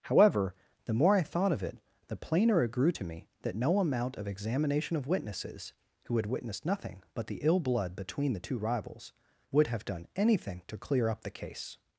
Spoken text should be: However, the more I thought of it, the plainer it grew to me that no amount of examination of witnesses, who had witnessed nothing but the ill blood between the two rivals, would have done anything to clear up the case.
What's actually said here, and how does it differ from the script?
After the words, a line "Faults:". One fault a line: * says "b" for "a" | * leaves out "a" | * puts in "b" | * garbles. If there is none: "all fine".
However, the more I thought of it, the plainer it grew to me that no amount of examination of witnesses, who had witnessed nothing but the ill blood between the two rivals, would have done anything to clear up the case.
Faults:
all fine